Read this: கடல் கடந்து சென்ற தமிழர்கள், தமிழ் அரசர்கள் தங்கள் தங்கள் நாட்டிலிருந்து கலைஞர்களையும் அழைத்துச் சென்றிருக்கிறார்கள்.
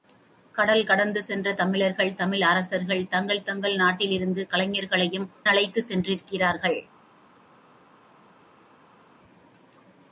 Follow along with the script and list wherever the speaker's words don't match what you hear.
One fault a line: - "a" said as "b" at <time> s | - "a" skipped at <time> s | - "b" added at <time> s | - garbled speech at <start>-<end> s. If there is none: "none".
none